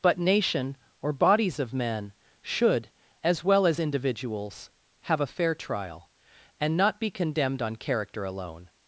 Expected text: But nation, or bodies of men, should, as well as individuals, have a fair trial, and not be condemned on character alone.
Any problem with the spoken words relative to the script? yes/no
no